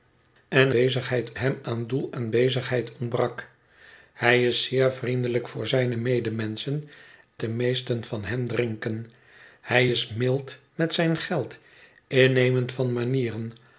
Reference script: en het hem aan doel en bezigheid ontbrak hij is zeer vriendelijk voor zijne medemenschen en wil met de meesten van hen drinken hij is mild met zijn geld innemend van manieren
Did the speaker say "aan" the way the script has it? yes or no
yes